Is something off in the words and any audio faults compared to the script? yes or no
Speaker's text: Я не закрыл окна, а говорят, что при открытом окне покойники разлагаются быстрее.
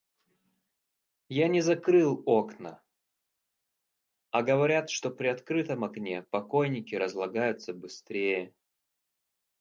no